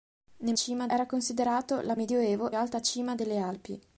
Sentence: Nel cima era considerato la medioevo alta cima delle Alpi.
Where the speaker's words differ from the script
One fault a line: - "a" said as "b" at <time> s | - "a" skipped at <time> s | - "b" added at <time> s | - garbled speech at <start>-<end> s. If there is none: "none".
none